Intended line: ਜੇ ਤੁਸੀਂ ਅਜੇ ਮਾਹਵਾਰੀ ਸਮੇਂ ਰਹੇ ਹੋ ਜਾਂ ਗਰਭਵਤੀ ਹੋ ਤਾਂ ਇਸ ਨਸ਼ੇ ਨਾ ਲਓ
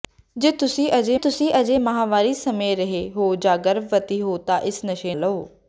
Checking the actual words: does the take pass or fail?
fail